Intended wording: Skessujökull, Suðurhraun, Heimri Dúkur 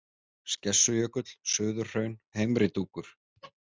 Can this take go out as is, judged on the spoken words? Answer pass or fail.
pass